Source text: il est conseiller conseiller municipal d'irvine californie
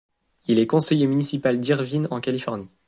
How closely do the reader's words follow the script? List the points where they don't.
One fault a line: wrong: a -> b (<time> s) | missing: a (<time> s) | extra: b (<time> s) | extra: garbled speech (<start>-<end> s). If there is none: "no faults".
missing: conseiller (1.1 s)
extra: en (2.1 s)